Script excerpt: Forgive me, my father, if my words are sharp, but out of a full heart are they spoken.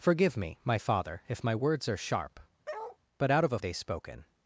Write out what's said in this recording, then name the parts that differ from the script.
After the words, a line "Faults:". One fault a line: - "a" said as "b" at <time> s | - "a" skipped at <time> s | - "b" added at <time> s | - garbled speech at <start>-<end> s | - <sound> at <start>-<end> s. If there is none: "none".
Forgive me, my father, if my words are sharp, but out of a they spoken.
Faults:
- bark at 2.7-3.0 s
- "full heart are" skipped at 3.6 s